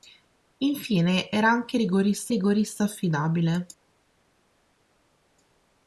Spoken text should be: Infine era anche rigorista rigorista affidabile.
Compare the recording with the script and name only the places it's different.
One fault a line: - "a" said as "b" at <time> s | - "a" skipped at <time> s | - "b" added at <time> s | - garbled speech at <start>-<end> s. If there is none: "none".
none